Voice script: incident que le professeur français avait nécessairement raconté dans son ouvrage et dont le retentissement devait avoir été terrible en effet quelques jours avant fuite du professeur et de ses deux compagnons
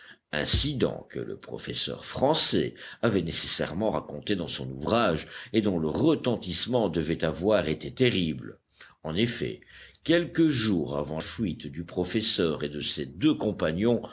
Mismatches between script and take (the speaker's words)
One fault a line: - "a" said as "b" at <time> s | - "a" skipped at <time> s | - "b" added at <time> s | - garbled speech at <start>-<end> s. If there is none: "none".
none